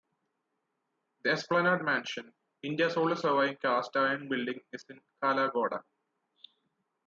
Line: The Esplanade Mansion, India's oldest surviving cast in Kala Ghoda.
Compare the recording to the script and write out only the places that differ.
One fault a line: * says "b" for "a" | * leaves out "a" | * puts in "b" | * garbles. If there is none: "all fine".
* puts in "iron building is"